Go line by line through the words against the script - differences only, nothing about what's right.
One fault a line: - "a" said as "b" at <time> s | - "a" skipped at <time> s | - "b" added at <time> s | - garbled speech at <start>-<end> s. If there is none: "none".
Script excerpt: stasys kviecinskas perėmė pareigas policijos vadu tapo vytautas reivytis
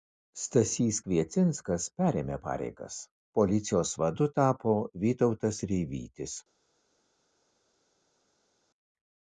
none